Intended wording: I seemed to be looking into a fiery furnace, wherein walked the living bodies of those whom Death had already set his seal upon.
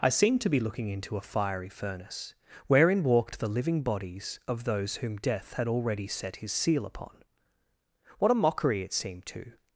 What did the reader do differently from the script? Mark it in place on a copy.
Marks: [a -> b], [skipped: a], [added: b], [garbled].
I seemed to be looking into a fiery furnace, wherein walked the living bodies of those whom Death had already set his seal upon. [added: What a mockery it seemed to]